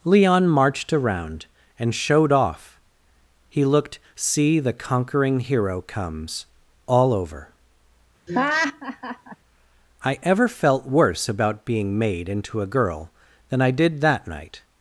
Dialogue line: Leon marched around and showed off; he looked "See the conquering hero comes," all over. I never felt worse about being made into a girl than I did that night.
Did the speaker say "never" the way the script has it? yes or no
no